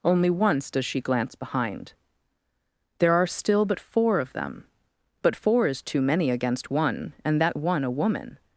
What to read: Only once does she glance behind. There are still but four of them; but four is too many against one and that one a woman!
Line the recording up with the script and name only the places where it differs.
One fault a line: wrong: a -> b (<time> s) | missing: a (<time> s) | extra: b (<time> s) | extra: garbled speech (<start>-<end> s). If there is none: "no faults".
no faults